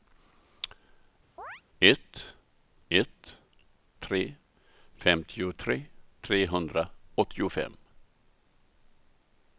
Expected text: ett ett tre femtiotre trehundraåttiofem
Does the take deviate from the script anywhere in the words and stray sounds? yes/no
yes